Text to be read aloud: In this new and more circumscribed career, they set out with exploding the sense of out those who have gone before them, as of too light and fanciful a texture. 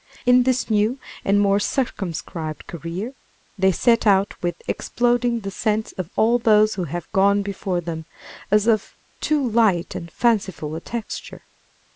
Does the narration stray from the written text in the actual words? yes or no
yes